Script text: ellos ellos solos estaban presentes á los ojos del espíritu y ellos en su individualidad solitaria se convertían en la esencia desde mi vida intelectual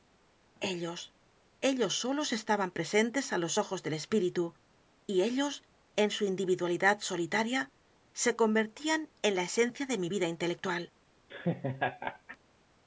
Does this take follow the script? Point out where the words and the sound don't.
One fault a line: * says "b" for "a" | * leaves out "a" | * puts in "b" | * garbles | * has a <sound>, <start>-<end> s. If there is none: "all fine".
* says "de" for "desde"
* has a laugh, 11.3-12.4 s